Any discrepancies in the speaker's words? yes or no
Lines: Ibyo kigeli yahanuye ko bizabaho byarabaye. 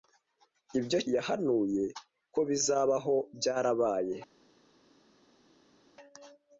yes